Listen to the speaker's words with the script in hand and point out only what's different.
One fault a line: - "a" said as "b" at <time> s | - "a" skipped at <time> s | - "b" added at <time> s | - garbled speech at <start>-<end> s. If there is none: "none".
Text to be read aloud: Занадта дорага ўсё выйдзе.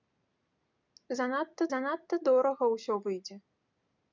- "занадта" added at 1.7 s